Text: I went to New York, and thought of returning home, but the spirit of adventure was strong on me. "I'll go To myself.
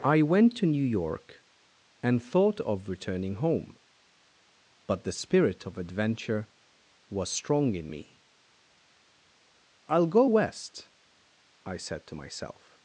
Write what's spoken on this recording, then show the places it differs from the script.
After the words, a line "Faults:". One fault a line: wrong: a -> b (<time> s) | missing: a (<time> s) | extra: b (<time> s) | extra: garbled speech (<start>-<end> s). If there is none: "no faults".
I went to New York, and thought of returning home, but the spirit of adventure was strong in me. "I'll go West," I said to myself.
Faults:
wrong: on -> in (7.8 s)
extra: West I said (10.2 s)